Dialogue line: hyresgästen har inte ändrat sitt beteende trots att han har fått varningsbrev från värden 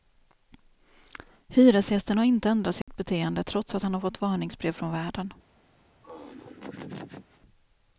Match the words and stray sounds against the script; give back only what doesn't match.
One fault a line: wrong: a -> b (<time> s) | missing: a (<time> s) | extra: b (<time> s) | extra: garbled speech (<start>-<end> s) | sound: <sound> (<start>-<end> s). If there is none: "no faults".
sound: dropout (2.8-2.9 s)
sound: laugh (6.0-7.4 s)